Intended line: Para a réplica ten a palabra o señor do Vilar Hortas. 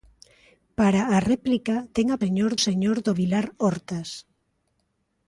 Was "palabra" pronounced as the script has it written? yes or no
no